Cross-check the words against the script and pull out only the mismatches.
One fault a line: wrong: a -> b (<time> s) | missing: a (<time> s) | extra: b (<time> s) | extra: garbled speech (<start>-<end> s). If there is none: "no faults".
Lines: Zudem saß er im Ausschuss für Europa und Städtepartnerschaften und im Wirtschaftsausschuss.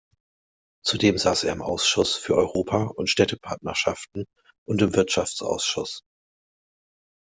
no faults